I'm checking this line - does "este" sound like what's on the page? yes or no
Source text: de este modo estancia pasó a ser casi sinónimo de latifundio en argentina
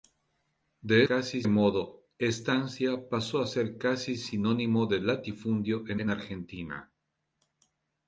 no